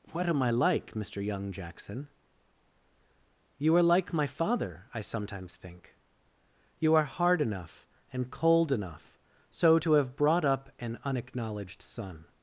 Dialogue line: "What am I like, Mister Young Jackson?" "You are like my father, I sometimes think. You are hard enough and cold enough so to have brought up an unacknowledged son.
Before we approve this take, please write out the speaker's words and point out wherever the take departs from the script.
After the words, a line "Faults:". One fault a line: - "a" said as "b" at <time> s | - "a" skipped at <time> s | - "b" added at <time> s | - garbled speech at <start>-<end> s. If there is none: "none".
"What am I like, Mister Young Jackson?" "You are like my father, I sometimes think. You are hard enough and cold enough so to have brought up an unacknowledged son.
Faults:
none